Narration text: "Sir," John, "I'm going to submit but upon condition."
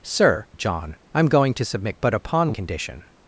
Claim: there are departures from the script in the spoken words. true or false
false